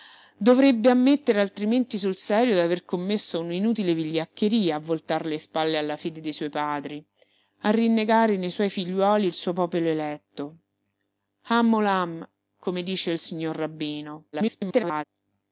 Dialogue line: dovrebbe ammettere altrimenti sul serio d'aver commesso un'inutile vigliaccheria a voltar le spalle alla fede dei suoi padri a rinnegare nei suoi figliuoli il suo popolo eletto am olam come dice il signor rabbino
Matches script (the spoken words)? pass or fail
fail